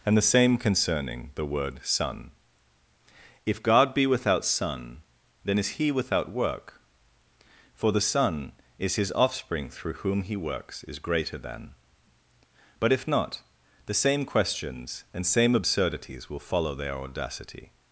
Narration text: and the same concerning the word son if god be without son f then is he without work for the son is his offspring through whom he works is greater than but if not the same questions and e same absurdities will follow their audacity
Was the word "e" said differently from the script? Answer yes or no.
yes